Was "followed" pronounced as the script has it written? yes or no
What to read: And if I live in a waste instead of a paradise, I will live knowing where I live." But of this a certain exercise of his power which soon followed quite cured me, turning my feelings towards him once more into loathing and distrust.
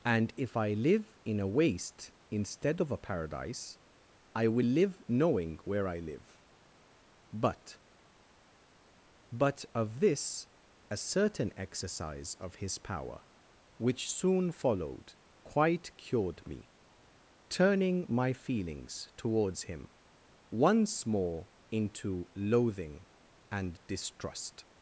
yes